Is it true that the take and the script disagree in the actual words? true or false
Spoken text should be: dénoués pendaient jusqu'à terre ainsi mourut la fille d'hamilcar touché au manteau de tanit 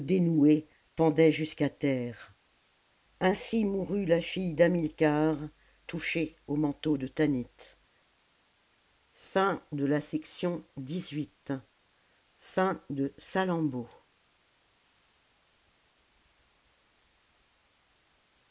false